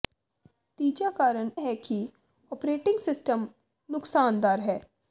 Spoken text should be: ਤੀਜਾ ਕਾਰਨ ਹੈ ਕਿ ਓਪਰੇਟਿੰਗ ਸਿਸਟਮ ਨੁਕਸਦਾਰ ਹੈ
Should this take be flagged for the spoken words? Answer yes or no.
no